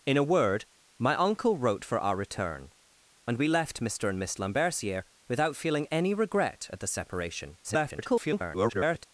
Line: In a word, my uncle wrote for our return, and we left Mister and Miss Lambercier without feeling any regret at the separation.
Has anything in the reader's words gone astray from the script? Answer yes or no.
yes